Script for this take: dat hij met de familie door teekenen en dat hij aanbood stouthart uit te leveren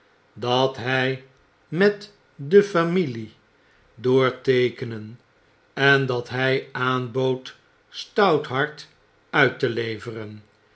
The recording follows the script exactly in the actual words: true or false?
true